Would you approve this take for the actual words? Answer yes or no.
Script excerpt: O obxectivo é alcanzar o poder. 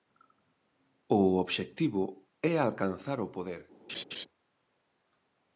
yes